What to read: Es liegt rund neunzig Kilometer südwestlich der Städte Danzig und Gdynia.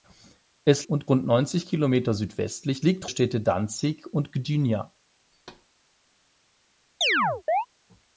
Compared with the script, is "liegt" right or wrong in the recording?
wrong